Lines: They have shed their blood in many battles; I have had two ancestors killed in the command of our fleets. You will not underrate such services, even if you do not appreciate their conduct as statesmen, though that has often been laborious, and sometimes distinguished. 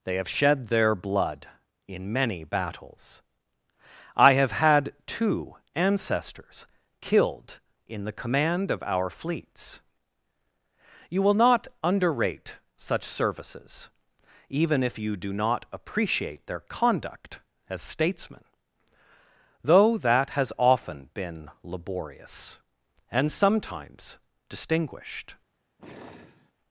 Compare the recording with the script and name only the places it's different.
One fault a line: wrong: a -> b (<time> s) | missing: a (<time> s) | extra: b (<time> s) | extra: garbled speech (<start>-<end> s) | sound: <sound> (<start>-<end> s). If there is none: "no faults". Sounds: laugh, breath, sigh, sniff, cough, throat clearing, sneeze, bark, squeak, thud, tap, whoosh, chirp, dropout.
sound: sigh (25.8-26.5 s)